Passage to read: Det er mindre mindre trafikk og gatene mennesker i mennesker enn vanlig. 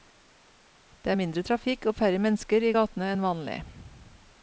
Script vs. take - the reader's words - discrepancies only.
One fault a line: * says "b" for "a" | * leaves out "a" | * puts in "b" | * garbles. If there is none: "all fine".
* leaves out "mindre"
* says "færre" for "gatene"
* says "gatene" for "mennesker"